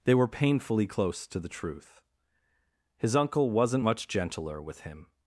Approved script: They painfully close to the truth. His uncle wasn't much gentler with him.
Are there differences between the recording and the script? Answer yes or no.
yes